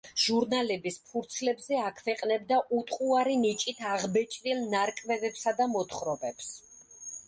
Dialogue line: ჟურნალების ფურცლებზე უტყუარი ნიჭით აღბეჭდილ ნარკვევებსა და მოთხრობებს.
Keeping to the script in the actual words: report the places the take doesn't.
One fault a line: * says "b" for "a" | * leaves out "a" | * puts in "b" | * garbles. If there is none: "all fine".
* puts in "აქვეყნებდა"